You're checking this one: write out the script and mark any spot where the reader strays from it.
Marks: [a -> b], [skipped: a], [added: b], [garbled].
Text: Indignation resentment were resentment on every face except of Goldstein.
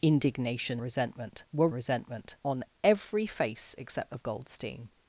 Indignation resentment were resentment on every face except of Goldstein.